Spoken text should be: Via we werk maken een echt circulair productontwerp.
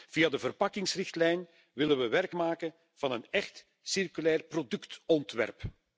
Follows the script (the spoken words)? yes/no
no